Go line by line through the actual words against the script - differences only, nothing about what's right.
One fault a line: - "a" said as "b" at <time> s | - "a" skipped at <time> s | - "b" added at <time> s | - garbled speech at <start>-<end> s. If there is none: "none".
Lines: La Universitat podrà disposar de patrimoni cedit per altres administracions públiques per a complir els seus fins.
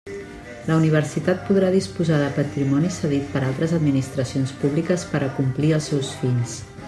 none